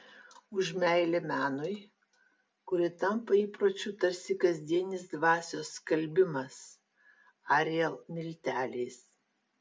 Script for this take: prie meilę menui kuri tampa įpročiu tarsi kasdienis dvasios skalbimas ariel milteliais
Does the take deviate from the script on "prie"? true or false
true